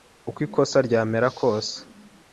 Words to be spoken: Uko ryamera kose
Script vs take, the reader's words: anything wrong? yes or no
yes